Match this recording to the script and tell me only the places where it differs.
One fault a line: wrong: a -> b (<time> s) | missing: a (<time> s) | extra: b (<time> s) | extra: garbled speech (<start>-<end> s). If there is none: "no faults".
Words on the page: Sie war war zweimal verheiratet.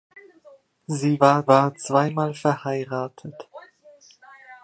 no faults